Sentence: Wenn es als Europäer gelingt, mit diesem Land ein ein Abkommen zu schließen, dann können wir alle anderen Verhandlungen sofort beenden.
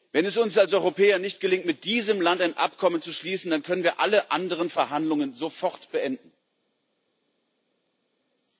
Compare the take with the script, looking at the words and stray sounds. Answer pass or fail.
fail